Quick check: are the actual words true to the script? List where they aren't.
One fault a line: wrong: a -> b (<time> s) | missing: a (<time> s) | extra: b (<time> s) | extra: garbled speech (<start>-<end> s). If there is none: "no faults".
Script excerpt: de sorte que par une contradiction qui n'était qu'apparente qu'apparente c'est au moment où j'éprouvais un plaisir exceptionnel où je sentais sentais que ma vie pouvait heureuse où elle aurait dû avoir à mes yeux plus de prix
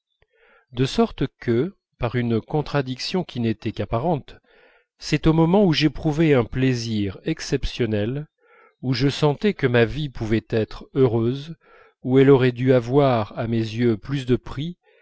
missing: qu'apparente (4.4 s)
missing: sentais (9.5 s)
extra: être (10.5 s)